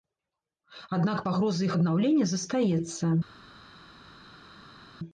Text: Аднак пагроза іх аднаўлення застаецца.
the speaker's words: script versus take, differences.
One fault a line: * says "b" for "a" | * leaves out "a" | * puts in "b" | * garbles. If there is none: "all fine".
all fine